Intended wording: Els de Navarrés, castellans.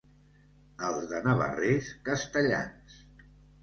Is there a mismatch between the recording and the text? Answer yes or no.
no